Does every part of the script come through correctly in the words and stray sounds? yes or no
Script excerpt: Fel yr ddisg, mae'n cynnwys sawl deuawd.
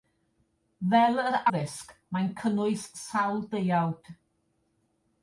yes